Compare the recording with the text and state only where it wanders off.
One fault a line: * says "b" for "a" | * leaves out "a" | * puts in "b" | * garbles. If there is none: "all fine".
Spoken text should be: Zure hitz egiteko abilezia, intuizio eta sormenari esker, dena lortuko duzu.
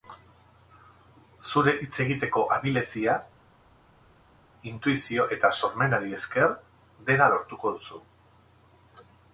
all fine